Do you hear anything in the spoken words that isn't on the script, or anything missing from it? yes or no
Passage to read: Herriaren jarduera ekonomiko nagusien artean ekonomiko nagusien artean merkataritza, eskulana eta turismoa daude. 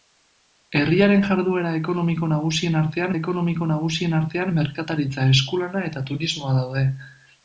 no